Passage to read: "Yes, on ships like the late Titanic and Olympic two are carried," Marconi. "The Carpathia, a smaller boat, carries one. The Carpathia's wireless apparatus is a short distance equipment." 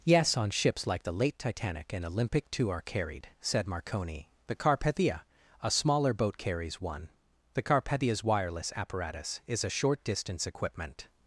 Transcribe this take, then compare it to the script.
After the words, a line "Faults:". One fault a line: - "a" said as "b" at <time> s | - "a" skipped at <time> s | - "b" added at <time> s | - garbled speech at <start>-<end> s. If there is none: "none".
"Yes, on ships like the late Titanic and Olympic two are carried," said Marconi. "The Carpathia, a smaller boat, carries one. The Carpathia's wireless apparatus is a short distance equipment."
Faults:
- "said" added at 3.4 s